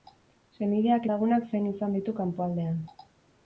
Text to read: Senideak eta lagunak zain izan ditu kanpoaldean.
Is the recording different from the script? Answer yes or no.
yes